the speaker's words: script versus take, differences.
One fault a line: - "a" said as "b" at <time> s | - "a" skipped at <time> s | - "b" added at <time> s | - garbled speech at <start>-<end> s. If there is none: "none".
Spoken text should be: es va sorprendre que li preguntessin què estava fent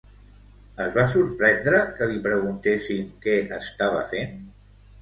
none